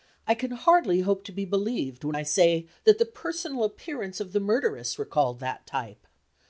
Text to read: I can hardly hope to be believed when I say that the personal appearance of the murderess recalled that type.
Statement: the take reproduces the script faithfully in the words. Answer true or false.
true